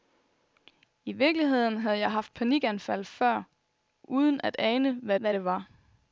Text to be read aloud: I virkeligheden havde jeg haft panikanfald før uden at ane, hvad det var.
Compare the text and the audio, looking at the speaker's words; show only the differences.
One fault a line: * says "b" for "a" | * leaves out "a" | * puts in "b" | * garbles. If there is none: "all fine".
* puts in "hvad"